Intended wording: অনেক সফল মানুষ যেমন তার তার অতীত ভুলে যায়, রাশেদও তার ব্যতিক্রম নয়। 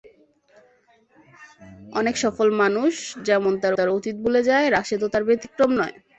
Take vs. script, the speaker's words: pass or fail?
pass